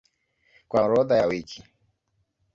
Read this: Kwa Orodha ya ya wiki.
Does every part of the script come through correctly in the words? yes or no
yes